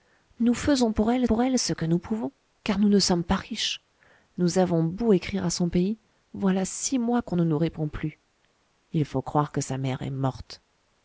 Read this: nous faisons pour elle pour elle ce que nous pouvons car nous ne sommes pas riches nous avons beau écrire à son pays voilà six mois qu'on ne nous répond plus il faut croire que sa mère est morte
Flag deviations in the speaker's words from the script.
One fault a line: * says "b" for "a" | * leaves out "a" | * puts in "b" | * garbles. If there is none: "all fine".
all fine